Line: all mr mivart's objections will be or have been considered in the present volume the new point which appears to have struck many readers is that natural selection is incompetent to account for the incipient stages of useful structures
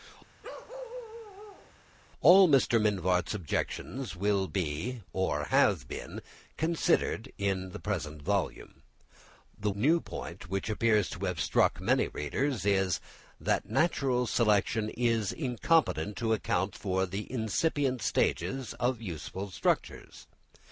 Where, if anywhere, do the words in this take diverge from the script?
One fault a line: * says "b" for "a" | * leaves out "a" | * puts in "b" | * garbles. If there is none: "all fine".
all fine